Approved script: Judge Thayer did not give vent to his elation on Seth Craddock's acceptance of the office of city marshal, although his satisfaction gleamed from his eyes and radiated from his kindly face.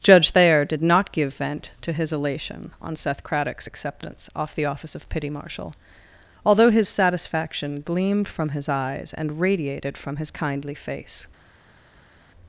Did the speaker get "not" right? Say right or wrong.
right